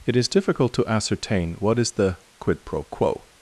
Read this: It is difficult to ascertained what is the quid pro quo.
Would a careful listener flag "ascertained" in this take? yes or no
yes